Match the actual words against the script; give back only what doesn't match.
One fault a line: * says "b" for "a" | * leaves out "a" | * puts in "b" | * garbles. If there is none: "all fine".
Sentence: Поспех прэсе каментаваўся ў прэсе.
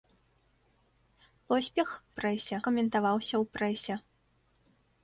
all fine